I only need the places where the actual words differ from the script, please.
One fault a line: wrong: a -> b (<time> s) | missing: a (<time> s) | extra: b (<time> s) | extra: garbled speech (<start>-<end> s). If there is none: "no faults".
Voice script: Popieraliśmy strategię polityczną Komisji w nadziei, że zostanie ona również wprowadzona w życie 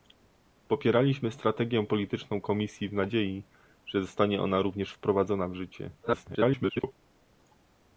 extra: garbled speech (6.0-6.9 s)